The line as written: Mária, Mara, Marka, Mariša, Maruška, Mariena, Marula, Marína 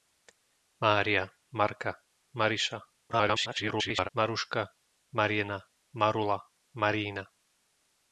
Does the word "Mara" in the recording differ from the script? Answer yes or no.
yes